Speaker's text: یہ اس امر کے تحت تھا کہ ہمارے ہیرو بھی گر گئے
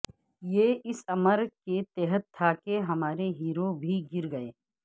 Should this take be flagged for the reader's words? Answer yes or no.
no